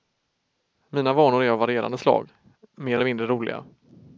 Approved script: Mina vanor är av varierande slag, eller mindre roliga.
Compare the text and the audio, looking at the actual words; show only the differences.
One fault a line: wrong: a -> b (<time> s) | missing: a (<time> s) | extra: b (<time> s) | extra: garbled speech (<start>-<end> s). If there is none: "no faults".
extra: mer (2.8 s)